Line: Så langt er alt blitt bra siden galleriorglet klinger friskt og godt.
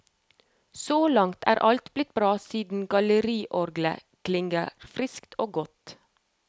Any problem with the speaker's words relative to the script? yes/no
no